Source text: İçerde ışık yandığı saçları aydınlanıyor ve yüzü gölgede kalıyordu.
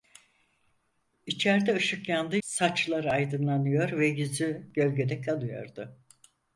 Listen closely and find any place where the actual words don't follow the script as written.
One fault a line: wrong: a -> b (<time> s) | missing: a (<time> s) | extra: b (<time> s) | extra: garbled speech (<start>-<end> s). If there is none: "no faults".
no faults